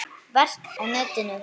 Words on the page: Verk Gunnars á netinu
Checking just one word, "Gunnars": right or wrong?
wrong